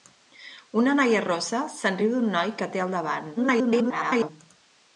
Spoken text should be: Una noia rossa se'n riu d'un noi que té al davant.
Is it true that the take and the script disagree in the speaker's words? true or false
true